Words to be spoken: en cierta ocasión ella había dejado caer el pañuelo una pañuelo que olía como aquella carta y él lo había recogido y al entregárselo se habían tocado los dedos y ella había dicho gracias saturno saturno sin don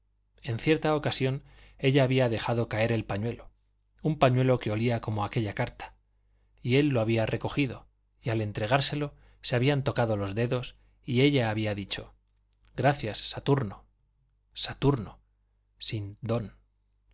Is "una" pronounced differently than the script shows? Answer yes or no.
yes